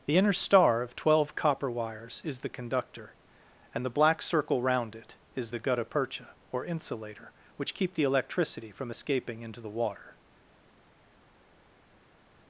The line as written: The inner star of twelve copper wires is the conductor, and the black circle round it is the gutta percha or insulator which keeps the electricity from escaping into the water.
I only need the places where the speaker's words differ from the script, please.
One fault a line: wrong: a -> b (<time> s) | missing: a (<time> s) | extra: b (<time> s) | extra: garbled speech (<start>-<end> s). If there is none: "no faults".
wrong: keeps -> keep (7.7 s)